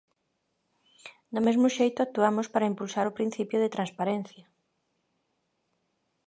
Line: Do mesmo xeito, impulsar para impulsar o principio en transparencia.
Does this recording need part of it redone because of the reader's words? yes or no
yes